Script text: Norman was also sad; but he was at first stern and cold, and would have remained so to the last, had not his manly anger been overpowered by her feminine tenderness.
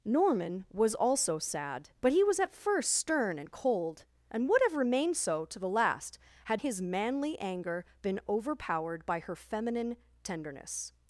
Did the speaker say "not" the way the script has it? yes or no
no